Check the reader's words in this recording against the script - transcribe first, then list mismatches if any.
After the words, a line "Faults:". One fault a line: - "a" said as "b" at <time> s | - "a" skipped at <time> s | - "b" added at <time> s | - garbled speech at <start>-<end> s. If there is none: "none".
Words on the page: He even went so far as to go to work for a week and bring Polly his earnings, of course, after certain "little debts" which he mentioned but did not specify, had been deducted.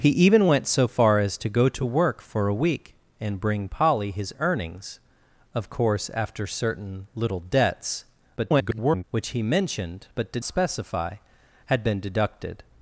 He even went so far as to go to work for a week and bring Polly his earnings, of course, after certain "little debts" [garbled] which he mentioned but did specify, had been deducted.
Faults:
- garbled speech at 8.4-9.0 s
- "not" skipped at 10.4 s